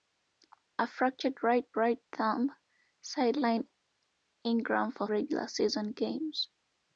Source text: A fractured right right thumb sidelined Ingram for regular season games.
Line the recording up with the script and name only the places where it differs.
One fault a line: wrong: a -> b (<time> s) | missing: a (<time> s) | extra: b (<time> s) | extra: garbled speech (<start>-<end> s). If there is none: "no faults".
no faults